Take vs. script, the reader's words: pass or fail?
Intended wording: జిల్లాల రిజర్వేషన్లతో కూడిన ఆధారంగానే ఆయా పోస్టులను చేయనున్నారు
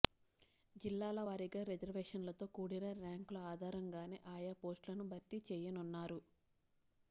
fail